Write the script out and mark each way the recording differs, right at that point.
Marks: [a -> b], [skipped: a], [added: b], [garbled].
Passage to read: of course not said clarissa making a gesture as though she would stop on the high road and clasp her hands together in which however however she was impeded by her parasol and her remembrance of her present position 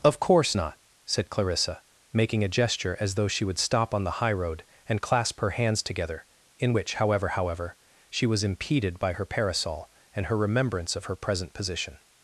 of course not said clarissa making a gesture as though she would stop on the high road and clasp her hands together in which however however she was impeded by her parasol and her remembrance of her present position